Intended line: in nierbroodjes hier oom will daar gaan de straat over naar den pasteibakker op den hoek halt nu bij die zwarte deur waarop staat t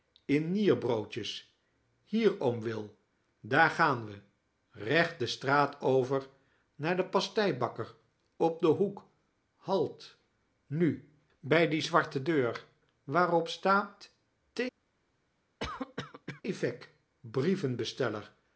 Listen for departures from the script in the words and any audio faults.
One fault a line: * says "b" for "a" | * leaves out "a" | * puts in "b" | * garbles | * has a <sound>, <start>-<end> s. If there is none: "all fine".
* puts in "we recht"
* has a cough, 15.6-16.4 s